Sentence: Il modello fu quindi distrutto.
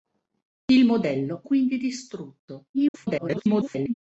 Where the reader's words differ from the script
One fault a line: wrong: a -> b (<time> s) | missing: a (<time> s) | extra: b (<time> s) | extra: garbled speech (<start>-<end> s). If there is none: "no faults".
missing: fu (1.4 s)
extra: garbled speech (2.7-3.9 s)